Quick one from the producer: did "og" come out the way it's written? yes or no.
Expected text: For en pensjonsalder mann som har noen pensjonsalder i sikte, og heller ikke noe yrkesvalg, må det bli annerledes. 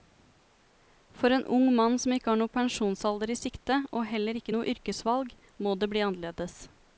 yes